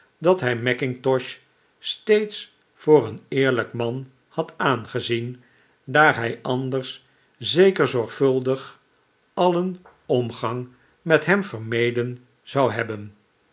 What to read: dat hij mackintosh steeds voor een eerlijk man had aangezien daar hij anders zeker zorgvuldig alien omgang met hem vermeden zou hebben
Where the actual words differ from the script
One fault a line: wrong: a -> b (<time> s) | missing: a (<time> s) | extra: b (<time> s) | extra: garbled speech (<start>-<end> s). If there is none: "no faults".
no faults